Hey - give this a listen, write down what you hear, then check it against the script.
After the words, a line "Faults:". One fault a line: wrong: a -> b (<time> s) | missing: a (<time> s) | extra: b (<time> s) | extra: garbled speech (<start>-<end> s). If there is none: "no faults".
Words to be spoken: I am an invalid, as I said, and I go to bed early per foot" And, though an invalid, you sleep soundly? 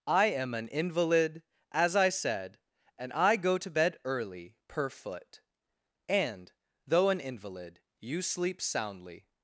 I am an invalid, as I said, and I go to bed early per foot" And, though an invalid, you sleep soundly?
Faults:
no faults